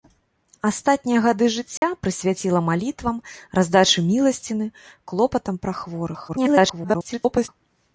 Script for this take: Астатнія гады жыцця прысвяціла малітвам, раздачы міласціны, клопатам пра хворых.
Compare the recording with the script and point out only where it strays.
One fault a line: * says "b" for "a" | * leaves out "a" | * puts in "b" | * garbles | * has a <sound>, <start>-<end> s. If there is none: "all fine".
* has a dropout, 1.8-1.8 s
* garbles